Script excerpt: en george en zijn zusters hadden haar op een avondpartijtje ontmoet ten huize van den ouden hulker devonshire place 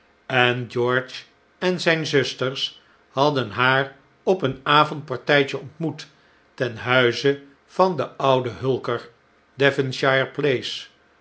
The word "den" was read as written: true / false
true